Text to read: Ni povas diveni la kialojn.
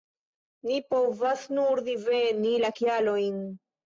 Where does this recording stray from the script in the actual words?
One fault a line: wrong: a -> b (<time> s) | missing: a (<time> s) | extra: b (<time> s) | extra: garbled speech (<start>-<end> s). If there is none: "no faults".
extra: nur (1.6 s)